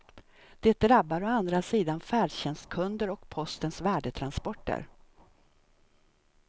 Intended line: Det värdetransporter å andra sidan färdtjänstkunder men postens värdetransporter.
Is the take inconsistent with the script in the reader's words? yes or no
yes